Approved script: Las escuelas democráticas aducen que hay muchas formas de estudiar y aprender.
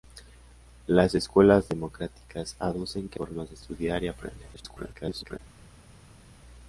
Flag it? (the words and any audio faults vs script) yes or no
yes